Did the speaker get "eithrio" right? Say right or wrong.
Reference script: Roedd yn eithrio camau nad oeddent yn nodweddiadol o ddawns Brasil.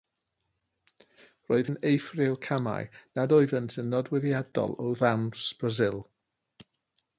right